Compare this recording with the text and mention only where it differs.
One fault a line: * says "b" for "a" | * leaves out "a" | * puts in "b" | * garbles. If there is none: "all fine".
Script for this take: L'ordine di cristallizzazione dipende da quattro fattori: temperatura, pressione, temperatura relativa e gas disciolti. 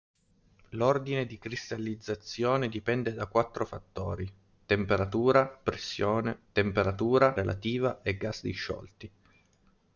all fine